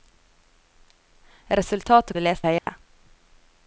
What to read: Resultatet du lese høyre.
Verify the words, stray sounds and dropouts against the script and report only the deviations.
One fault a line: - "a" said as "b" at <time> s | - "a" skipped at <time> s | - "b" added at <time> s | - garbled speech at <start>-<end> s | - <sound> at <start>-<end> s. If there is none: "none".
- dropout at 2.6-2.7 s